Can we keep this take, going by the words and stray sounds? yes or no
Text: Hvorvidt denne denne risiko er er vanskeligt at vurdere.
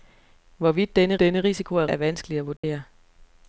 no